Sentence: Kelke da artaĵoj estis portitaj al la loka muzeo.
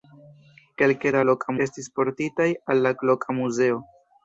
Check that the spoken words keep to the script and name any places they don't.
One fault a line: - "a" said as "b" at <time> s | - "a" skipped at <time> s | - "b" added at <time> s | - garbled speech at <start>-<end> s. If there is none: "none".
- "artaĵoj" said as "loka" at 1.3 s